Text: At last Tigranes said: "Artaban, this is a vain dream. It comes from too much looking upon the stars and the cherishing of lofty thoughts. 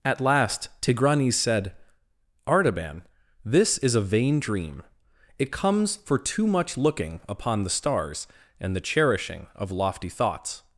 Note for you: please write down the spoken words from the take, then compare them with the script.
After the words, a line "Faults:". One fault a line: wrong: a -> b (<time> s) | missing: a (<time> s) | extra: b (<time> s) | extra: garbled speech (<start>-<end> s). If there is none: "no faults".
At last Tigranes said: "Artaban, this is a vain dream. It comes for too much looking upon the stars and the cherishing of lofty thoughts.
Faults:
wrong: from -> for (6.0 s)